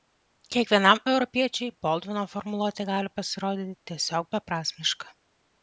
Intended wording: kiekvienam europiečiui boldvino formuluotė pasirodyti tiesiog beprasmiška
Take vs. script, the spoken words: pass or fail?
fail